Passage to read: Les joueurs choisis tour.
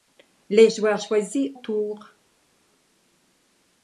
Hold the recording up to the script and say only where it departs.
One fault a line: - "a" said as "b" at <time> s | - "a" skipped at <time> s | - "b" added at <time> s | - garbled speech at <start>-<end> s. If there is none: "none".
none